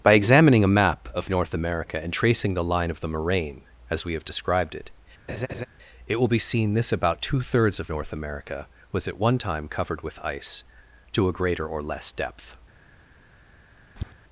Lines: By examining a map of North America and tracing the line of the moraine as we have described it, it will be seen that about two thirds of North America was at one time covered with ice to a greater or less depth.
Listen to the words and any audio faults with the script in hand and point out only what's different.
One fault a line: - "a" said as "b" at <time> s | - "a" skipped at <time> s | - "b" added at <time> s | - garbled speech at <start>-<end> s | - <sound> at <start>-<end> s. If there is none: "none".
- laugh at 5.3-5.7 s
- "that" said as "this" at 6.7 s
- tap at 14.0-14.1 s